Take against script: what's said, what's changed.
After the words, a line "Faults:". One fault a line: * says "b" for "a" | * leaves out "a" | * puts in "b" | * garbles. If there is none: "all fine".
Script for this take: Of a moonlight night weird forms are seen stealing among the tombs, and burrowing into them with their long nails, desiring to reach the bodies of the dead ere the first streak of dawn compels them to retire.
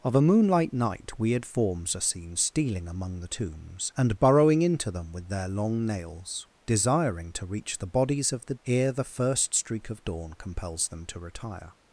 Of a moonlight night weird forms are seen stealing among the tombs, and burrowing into them with their long nails, desiring to reach the bodies of the ere the first streak of dawn compels them to retire.
Faults:
* leaves out "dead"